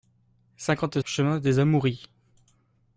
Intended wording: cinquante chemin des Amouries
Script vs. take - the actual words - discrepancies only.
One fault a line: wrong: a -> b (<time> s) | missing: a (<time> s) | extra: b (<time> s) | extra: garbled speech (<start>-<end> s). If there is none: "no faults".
no faults